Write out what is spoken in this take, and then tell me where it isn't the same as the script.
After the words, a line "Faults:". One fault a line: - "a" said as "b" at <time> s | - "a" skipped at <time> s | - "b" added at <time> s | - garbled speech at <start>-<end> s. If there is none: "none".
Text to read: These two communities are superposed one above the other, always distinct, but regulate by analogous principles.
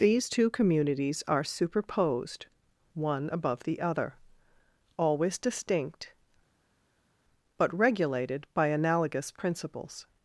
These two communities are superposed one above the other, always distinct, but regulated by analogous principles.
Faults:
- "regulate" said as "regulated" at 7.7 s